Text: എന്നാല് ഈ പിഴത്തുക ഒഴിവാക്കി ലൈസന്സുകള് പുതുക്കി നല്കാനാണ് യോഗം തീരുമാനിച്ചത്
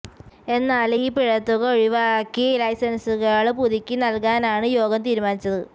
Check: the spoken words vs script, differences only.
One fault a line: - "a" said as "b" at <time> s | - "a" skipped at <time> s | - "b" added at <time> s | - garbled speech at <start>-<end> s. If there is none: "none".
none